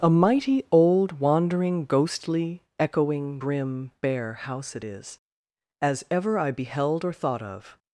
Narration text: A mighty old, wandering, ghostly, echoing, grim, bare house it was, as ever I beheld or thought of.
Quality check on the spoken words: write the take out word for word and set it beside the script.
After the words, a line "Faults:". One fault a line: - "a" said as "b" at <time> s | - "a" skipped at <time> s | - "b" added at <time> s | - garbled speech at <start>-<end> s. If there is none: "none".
A mighty old, wandering, ghostly, echoing, grim, bare house it is, as ever I beheld or thought of.
Faults:
- "was" said as "is" at 4.8 s